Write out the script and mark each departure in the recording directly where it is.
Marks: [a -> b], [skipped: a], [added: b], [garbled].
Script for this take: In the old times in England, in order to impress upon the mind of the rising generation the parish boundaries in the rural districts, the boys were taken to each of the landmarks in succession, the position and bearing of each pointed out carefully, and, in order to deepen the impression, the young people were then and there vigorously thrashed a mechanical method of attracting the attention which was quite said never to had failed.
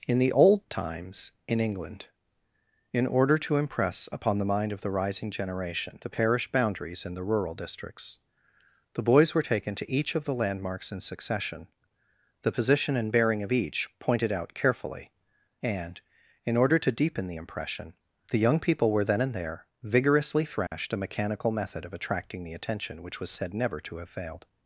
In the old times in England, in order to impress upon the mind of the rising generation the parish boundaries in the rural districts, the boys were taken to each of the landmarks in succession, the position and bearing of each pointed out carefully, and, in order to deepen the impression, the young people were then and there vigorously thrashed a mechanical method of attracting the attention which was [skipped: quite] said never to [had -> have] failed.